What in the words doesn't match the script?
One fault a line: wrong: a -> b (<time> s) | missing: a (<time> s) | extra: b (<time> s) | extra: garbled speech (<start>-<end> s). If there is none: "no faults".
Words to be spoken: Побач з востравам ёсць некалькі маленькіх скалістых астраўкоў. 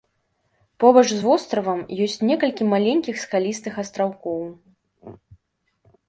no faults